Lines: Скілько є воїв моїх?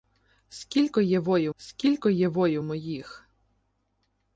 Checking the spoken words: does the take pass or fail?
fail